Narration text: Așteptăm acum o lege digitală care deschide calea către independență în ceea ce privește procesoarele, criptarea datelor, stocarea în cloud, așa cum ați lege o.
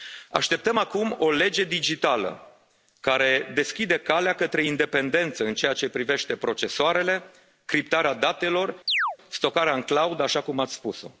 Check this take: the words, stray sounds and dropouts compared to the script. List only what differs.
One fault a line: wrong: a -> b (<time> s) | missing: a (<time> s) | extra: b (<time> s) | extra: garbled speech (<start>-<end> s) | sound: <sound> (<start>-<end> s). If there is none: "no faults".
sound: chirp (8.9-9.2 s)
wrong: lege -> spus (10.7 s)